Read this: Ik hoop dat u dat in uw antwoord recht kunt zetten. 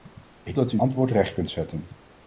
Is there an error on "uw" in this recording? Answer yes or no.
yes